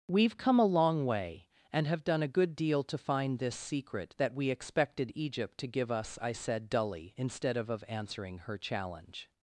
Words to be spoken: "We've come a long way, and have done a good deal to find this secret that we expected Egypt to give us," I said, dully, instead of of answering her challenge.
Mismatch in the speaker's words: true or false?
false